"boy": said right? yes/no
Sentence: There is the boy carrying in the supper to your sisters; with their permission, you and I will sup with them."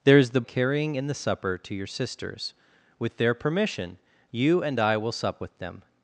no